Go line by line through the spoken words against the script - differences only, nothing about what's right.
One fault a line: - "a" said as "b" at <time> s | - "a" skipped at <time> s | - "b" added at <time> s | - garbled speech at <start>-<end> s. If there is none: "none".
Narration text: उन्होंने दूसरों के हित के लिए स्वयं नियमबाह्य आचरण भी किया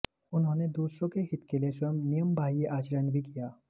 none